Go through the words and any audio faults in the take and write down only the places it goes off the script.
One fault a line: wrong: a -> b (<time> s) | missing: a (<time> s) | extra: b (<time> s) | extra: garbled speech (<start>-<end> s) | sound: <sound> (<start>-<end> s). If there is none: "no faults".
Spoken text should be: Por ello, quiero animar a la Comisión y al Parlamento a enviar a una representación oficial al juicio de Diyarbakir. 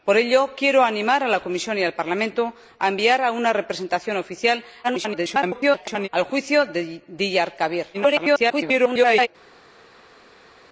extra: garbled speech (4.8-6.1 s)
extra: garbled speech (7.9-9.3 s)